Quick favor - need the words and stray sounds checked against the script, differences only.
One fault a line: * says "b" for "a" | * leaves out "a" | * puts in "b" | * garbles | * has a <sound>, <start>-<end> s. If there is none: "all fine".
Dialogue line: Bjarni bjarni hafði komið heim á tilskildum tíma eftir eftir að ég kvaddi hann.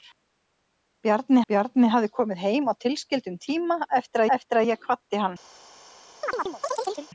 * has a chirp, 6.2-7.1 s